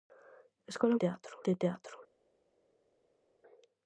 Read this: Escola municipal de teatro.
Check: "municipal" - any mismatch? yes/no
yes